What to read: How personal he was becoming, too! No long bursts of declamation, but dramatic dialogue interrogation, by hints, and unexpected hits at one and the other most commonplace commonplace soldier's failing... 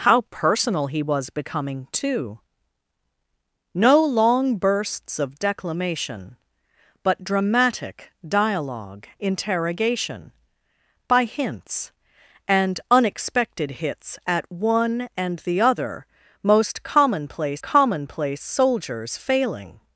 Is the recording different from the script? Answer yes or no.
no